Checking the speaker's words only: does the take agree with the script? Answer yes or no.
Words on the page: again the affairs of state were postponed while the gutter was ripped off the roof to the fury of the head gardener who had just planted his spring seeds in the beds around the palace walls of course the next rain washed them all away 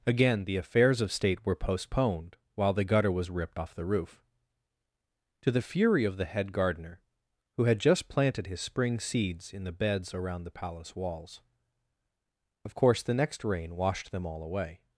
yes